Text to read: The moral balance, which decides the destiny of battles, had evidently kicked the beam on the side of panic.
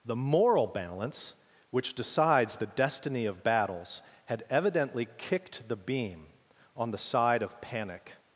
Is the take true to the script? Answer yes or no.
yes